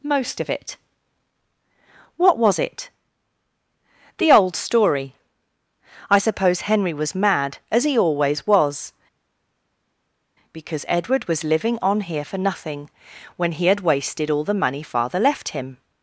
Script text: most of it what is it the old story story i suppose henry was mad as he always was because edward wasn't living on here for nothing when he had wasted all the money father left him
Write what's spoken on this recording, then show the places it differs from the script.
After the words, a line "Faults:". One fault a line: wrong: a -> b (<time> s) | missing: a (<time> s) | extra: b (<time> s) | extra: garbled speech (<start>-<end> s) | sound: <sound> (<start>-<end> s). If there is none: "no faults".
most of it what was it the old story i suppose henry was mad as he always was because edward was living on here for nothing when he had wasted all the money father left him
Faults:
wrong: is -> was (2.4 s)
missing: story (5.2 s)
wrong: wasn't -> was (11.3 s)